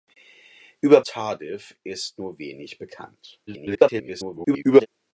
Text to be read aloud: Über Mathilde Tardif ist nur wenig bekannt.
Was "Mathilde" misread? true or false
true